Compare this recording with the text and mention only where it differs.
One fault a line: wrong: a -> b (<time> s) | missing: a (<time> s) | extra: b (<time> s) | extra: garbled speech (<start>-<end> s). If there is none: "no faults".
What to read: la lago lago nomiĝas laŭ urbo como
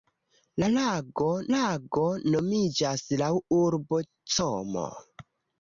no faults